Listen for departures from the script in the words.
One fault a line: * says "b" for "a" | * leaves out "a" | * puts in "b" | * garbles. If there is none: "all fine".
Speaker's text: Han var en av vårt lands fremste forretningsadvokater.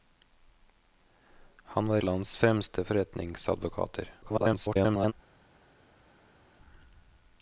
* leaves out "en av vårt"
* garbles